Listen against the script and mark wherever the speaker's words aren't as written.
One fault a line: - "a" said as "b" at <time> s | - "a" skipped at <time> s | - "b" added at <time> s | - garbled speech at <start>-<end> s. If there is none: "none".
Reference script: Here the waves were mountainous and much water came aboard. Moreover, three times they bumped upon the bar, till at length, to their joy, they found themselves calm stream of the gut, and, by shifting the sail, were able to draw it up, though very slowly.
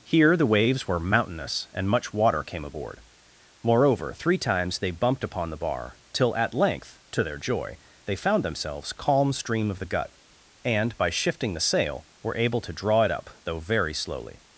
none